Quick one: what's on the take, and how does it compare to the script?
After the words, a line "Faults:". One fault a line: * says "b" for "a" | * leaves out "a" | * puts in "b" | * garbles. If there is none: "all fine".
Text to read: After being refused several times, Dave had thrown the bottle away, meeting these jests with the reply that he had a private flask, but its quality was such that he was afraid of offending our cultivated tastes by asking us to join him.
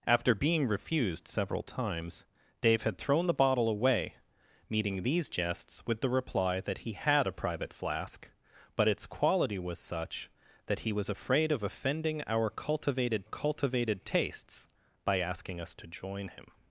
After being refused several times, Dave had thrown the bottle away, meeting these jests with the reply that he had a private flask, but its quality was such that he was afraid of offending our cultivated cultivated tastes by asking us to join him.
Faults:
* puts in "cultivated"